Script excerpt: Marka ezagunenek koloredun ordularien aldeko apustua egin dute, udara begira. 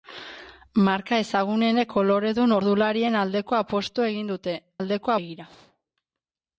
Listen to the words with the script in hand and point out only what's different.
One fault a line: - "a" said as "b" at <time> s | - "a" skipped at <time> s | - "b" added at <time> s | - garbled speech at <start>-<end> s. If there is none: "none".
- "udara" said as "aldeko" at 4.8 s